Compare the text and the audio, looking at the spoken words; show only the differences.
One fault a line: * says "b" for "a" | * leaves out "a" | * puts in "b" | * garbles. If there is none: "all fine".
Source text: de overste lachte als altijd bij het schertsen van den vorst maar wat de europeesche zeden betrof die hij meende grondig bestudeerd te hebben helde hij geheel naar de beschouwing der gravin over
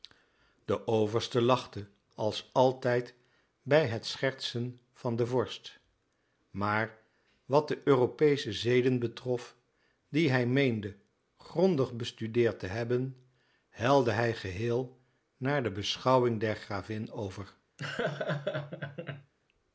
all fine